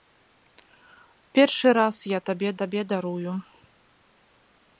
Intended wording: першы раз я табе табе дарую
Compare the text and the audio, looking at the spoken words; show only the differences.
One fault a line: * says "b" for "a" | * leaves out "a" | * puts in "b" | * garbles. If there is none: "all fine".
all fine